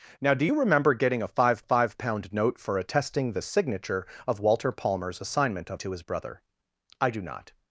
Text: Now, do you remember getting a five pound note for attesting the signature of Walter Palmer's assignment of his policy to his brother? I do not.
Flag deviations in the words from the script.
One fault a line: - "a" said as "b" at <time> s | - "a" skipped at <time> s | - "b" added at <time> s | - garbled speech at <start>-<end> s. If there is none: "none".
- "five" added at 1.6 s
- "his policy" skipped at 5.8 s